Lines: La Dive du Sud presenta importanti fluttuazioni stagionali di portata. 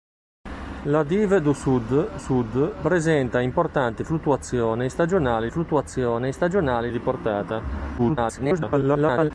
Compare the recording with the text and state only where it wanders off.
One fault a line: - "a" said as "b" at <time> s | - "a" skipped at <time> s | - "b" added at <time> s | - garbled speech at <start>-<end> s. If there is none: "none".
- "Sud" added at 2.2 s
- "fluttuazioni stagionali" added at 5.5 s
- garbled speech at 8.0-9.3 s